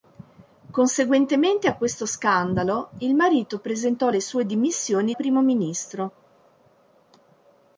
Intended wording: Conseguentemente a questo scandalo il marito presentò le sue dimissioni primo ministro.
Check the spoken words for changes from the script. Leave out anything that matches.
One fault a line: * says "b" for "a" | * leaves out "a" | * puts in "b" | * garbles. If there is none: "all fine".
all fine